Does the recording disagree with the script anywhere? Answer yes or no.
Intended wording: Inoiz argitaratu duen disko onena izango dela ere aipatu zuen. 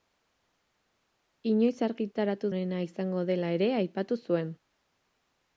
yes